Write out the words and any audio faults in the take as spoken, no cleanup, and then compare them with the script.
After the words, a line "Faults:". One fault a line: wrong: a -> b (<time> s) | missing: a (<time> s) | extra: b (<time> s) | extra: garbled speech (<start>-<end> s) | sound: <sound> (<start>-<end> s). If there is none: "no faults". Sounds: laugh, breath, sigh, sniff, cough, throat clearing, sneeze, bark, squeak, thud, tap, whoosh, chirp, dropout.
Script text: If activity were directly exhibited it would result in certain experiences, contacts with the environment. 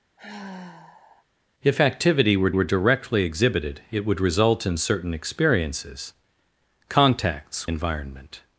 If activity were were directly exhibited it would result in certain experiences, contacts environment.
Faults:
sound: sigh (0.2-1.3 s)
extra: were (2.5 s)
missing: with the (7.7 s)